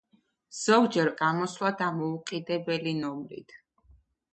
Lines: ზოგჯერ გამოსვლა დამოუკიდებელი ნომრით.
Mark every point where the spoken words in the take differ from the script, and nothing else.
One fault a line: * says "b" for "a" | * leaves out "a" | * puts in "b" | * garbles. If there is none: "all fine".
all fine